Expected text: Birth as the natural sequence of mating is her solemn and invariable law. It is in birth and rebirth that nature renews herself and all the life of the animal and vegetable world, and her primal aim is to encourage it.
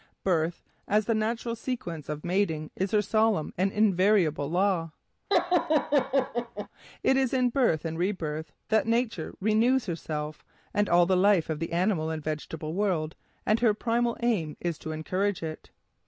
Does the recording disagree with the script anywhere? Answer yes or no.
no